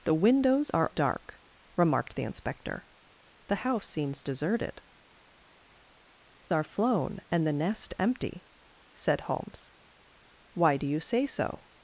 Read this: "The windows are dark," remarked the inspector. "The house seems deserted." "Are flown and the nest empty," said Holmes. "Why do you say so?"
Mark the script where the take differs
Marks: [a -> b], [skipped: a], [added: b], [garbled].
"The windows are dark," remarked the inspector. "The house seems deserted." "Are flown and the nest empty," said Holmes. "Why do you say so?"